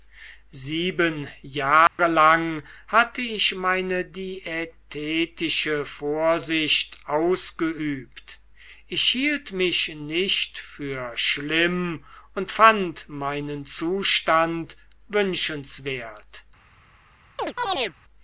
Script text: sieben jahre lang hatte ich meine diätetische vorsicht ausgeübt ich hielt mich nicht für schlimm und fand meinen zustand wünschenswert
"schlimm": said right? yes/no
yes